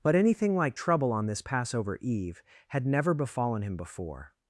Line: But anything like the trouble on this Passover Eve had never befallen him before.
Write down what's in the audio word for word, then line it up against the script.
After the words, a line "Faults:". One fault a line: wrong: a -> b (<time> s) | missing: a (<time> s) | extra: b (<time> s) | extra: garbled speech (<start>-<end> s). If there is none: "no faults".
But anything like trouble on this Passover Eve had never befallen him before.
Faults:
missing: the (0.8 s)